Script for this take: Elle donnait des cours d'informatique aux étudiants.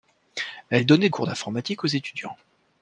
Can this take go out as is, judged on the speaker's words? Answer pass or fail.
fail